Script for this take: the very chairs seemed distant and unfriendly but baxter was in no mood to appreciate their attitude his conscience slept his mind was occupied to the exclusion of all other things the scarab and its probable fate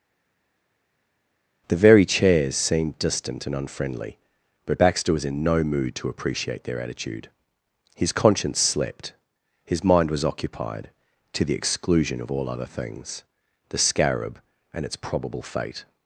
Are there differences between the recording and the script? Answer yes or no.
no